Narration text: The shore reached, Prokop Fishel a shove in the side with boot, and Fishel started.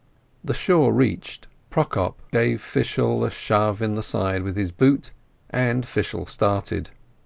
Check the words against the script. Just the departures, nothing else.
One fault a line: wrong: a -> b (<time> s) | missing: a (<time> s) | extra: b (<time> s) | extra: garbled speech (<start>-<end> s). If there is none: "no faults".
extra: gave (2.3 s)
extra: his (4.6 s)